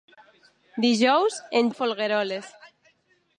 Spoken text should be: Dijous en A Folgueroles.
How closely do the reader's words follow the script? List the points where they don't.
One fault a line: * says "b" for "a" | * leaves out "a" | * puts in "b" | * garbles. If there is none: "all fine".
all fine